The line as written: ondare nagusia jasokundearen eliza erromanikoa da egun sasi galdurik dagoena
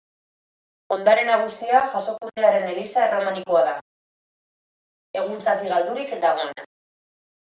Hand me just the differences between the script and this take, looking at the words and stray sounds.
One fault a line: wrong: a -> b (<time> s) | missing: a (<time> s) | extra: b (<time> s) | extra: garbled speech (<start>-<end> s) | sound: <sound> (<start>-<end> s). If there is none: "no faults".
no faults